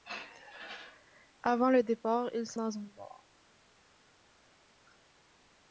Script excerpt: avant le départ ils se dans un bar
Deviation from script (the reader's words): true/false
false